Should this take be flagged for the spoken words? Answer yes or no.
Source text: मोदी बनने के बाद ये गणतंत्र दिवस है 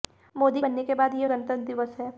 no